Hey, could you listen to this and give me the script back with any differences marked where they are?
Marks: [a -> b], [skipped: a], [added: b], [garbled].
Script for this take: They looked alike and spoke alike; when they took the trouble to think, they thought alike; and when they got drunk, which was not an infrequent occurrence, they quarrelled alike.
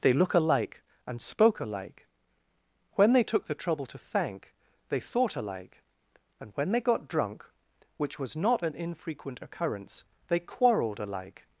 They [looked -> look] alike and spoke alike; when they took the trouble to [think, -> thank] they thought alike; and when they got drunk, which was not an infrequent occurrence, they quarrelled alike.